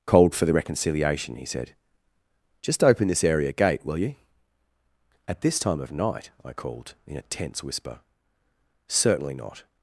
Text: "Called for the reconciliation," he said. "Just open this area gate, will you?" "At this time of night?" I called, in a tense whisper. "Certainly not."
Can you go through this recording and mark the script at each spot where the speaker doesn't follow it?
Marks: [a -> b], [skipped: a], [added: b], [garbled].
"Called for the reconciliation," he said. "Just open this area gate, will you?" "At this time of night?" I called, in a tense whisper. "Certainly not."